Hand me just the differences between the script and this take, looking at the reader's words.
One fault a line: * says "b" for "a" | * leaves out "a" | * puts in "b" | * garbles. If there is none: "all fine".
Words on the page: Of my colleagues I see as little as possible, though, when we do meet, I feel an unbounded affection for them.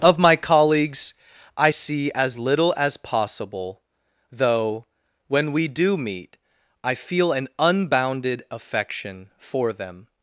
all fine